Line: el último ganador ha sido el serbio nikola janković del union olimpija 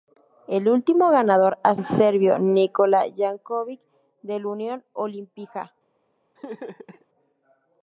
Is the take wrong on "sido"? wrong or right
wrong